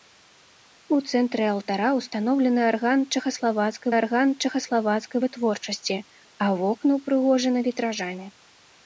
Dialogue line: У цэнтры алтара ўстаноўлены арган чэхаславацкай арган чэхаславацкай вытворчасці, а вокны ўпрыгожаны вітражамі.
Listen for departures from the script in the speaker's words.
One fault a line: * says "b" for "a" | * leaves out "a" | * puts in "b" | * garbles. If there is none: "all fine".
all fine